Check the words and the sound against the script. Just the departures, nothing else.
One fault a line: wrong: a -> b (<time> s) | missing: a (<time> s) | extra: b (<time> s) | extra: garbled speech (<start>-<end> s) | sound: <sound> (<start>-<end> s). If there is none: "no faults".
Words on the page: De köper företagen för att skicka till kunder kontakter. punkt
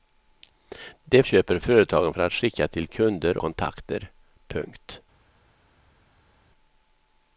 no faults